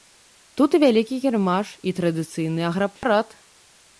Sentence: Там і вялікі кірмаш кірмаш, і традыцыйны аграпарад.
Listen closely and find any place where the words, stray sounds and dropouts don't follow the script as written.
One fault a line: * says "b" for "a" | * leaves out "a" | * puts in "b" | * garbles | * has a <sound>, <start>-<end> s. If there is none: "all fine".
* says "Тут" for "Там"
* leaves out "кірмаш"
* has a dropout, 3.0-3.0 s